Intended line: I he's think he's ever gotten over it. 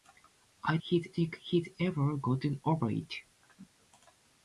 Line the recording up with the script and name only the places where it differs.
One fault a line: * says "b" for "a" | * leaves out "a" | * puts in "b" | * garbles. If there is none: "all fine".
all fine